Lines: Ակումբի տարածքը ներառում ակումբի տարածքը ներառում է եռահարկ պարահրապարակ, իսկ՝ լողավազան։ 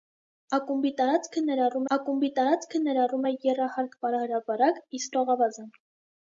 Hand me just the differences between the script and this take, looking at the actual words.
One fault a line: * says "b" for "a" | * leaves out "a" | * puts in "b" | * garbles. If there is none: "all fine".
all fine